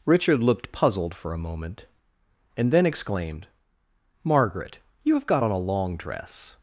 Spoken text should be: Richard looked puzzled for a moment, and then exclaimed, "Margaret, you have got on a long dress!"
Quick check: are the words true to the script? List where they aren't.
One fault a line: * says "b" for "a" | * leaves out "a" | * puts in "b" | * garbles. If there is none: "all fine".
all fine